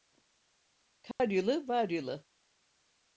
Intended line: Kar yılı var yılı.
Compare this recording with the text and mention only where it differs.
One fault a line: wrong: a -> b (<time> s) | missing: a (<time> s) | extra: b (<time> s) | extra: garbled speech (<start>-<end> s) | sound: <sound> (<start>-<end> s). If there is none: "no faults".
sound: dropout (1.1-1.2 s)